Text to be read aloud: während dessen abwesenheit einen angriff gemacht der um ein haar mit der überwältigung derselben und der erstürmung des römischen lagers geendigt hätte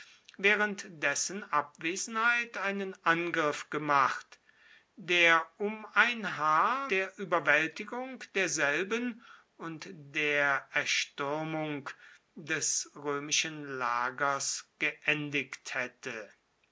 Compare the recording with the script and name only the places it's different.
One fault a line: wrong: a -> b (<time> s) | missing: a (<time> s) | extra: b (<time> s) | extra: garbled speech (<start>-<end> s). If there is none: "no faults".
missing: mit (6.9 s)